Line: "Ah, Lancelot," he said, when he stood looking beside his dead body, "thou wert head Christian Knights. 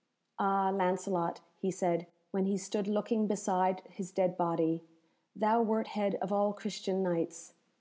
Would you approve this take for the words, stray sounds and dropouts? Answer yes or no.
no